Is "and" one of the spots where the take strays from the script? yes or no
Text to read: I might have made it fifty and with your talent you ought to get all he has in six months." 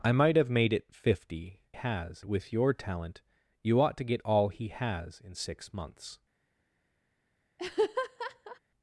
yes